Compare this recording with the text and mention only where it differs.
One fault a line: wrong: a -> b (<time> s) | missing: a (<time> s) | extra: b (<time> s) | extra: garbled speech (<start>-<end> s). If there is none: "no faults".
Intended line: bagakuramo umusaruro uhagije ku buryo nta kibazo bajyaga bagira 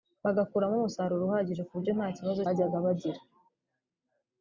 no faults